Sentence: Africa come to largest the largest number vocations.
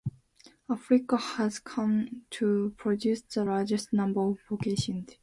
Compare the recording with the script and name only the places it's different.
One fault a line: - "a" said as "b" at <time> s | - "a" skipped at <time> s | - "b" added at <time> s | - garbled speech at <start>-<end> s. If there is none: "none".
- "has" added at 1.1 s
- "largest" said as "produce" at 2.8 s
- "of" added at 4.2 s